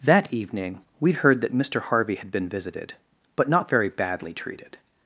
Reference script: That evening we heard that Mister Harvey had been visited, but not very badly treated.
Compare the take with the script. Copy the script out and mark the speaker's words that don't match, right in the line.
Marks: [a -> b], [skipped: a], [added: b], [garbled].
That evening we heard that Mister Harvey had been visited, but not very badly treated.